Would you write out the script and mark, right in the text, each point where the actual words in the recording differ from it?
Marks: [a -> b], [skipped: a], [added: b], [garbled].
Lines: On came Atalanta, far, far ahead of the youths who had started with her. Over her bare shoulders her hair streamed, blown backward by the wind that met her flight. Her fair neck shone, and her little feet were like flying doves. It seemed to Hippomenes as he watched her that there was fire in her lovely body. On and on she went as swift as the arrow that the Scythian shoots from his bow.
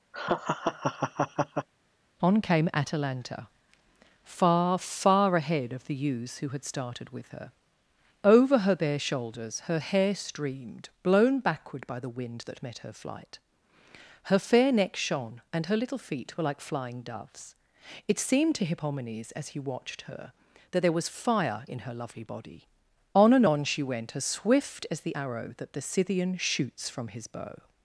On came Atalanta, far, far ahead of the youths who had started with her. Over her bare shoulders her hair streamed, blown backward by the wind that met her flight. Her fair neck shone, and her little feet were like flying doves. It seemed to Hippomenes as he watched her that there was fire in her lovely body. On and on she went as swift as the arrow that the Scythian shoots from his bow.